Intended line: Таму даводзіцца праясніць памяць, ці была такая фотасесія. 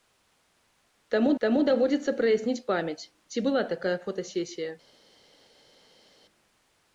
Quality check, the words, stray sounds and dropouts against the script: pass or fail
fail